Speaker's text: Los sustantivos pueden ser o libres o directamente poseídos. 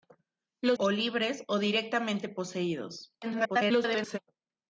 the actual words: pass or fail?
fail